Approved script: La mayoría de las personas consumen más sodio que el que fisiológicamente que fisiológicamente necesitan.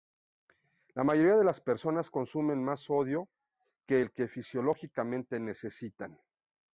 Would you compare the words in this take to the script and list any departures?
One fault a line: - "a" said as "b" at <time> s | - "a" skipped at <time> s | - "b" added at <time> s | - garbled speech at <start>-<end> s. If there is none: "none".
- "que fisiológicamente" skipped at 5.4 s